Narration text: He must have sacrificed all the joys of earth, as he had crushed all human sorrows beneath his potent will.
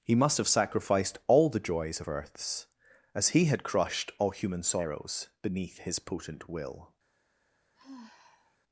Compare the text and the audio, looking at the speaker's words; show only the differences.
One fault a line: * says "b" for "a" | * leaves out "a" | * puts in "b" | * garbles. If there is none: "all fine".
* says "earths" for "earth"